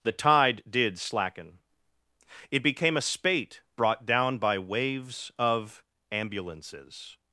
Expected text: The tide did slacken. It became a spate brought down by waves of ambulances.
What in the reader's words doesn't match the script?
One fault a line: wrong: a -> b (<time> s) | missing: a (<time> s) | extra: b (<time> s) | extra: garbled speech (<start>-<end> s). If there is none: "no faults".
no faults